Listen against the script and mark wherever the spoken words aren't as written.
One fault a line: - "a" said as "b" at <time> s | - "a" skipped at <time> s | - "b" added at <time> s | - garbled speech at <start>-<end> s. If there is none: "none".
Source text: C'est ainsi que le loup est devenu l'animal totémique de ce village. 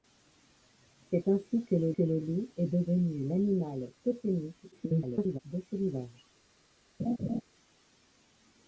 - "que le" added at 1.9 s
- garbled speech at 4.7-5.4 s